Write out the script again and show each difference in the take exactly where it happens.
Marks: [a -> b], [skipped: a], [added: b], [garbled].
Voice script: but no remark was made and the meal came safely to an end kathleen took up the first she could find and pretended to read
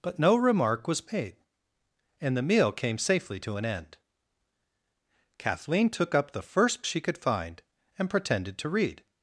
but no remark was made and the meal came safely to an end kathleen took up the first she could find and pretended to read